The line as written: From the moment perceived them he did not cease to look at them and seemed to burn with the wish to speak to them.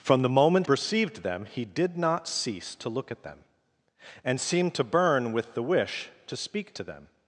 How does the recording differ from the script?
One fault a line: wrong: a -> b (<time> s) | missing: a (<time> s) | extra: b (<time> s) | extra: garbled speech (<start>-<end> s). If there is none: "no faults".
no faults